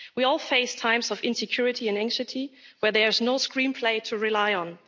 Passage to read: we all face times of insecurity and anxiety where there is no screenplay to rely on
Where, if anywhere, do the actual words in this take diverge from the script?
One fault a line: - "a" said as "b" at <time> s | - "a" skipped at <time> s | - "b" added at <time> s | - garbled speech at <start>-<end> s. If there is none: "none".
none